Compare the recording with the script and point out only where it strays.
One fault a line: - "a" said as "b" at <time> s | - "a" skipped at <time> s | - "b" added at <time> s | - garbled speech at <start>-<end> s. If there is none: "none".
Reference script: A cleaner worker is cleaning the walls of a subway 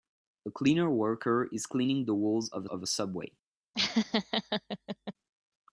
- "of" added at 2.7 s